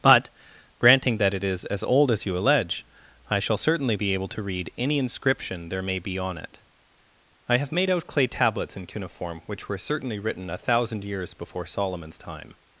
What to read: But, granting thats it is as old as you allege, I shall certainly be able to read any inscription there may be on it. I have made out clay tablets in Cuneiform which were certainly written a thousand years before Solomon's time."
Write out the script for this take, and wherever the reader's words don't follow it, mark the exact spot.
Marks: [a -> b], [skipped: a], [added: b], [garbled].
But, granting [thats -> that] it is as old as you allege, I shall certainly be able to read any inscription there may be on it. I have made out clay tablets in Cuneiform which were certainly written a thousand years before Solomon's time."